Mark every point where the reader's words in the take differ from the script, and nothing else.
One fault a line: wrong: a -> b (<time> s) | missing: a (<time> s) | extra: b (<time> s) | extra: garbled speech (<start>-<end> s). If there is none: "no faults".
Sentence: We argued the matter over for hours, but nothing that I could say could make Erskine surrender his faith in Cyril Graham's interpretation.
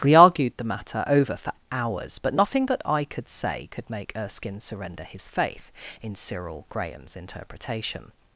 no faults